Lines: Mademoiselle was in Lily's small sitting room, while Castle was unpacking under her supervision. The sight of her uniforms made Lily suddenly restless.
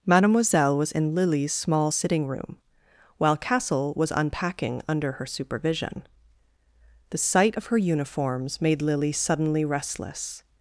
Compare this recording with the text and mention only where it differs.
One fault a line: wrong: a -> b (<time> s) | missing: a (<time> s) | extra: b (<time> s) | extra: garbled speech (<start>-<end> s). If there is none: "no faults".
no faults